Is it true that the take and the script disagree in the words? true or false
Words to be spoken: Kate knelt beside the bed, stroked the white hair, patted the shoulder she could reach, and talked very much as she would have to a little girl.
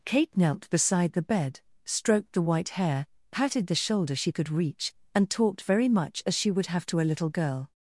false